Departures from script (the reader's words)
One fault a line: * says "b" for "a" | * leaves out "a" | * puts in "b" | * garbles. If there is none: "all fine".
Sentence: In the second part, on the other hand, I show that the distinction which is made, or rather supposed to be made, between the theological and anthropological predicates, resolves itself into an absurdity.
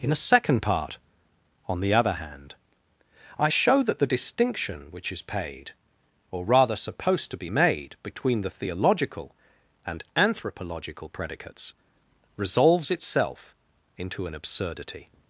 * says "a" for "the"
* says "paid" for "made"